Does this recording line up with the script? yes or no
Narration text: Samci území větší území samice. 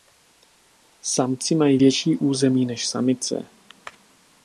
no